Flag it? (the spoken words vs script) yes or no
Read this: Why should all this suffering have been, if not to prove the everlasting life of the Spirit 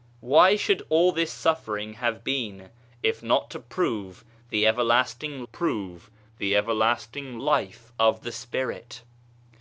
yes